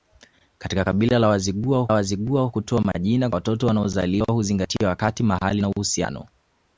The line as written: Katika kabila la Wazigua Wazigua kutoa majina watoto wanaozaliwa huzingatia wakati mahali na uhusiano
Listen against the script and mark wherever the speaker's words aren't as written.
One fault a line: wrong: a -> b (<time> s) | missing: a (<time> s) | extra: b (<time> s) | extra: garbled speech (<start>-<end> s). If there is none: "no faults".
no faults